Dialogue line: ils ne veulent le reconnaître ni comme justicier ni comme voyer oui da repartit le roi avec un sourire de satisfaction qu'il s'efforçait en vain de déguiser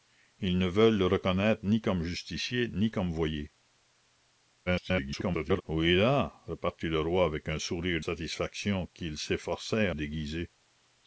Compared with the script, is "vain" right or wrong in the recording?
wrong